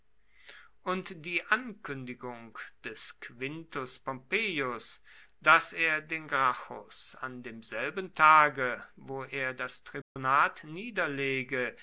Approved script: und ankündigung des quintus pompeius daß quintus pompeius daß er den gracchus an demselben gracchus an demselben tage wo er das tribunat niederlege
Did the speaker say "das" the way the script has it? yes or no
yes